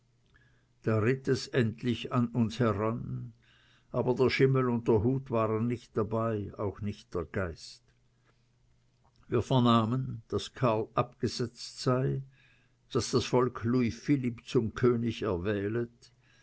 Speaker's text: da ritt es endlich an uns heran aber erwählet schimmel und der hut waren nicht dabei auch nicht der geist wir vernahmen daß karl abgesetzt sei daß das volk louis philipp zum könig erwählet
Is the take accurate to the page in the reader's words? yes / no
no